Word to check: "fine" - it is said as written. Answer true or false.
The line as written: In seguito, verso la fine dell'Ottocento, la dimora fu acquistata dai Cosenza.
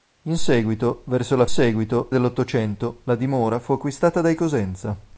false